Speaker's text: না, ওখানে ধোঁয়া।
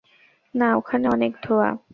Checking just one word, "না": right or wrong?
right